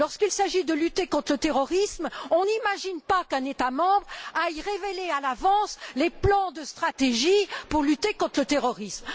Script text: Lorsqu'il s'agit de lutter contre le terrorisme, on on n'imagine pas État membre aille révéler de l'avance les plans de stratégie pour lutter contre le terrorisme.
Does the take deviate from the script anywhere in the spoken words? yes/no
yes